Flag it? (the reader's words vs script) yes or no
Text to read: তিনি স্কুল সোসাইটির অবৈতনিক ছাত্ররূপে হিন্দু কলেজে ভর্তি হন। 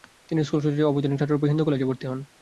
no